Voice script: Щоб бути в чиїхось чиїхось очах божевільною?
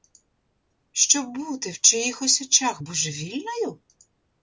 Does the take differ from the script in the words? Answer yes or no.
yes